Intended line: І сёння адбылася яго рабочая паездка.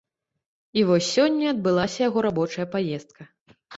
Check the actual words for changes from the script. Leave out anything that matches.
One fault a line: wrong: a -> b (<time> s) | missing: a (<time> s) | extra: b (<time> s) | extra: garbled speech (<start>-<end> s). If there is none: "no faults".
extra: вось (0.9 s)